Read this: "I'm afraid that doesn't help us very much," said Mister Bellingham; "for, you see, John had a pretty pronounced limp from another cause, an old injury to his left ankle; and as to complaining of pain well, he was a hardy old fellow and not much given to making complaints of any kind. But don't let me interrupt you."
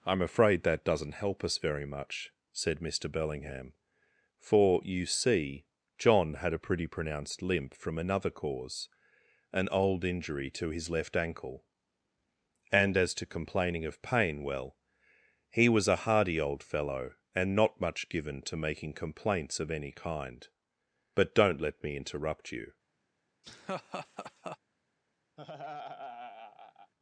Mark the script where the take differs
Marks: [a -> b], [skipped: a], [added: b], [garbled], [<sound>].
"I'm afraid that doesn't help us very much," said Mister Bellingham; "for, you see, John had a pretty pronounced limp from another cause, an old injury to his left ankle; and as to complaining of pain well, he was a hardy old fellow and not much given to making complaints of any kind. But don't let me interrupt you." [laugh] [laugh]